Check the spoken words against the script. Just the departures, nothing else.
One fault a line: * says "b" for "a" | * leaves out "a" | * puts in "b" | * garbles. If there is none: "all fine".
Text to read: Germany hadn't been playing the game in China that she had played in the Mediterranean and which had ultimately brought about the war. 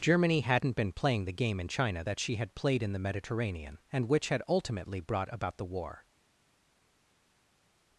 all fine